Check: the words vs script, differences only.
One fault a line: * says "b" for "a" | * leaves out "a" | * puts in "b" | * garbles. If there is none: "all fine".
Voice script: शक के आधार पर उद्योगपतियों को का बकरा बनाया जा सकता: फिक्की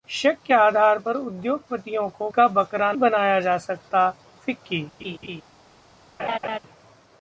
all fine